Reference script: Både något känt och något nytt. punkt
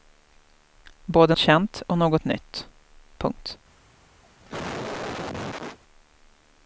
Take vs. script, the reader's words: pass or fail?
fail